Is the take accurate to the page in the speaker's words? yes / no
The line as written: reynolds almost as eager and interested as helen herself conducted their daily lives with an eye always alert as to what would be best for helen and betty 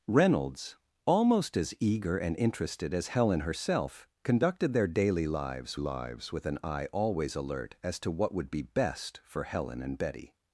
no